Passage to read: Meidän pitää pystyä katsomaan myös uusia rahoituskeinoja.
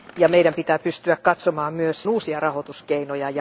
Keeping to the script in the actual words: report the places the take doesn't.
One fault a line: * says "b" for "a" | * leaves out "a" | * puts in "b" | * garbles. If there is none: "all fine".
all fine